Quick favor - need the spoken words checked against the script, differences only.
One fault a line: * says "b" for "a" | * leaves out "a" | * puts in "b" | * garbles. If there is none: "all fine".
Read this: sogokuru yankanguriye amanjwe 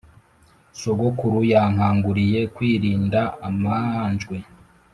* puts in "kwirinda"